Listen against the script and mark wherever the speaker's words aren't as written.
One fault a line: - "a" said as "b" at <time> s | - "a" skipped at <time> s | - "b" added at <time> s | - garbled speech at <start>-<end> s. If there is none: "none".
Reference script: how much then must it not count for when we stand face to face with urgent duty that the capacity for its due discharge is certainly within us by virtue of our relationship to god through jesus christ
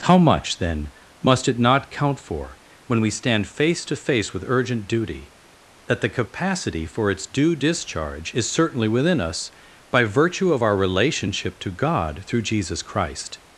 none